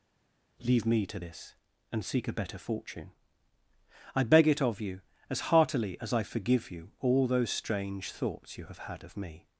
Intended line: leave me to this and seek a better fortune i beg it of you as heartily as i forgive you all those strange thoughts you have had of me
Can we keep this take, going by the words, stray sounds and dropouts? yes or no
yes